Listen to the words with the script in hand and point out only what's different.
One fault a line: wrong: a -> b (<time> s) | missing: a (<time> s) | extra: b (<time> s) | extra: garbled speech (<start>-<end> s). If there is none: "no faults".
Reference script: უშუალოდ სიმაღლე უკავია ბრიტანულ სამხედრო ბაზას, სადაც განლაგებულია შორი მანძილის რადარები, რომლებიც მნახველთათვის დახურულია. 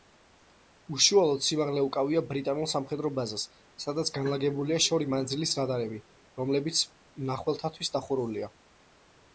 no faults